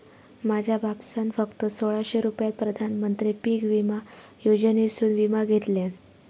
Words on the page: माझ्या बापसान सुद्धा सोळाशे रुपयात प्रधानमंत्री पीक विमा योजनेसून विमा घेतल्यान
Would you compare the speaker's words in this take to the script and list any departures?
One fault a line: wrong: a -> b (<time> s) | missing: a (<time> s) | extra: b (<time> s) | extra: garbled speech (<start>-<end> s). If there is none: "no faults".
wrong: सुद्धा -> फक्त (1.3 s)